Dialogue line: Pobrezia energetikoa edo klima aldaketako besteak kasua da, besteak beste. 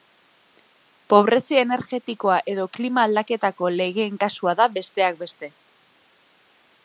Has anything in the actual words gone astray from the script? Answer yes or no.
yes